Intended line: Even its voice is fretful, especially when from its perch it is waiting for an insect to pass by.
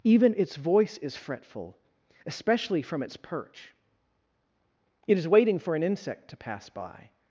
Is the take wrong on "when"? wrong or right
wrong